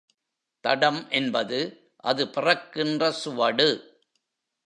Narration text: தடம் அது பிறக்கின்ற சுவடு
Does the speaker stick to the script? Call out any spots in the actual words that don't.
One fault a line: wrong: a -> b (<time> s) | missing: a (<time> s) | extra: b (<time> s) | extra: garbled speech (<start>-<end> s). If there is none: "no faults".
extra: என்பது (1.1 s)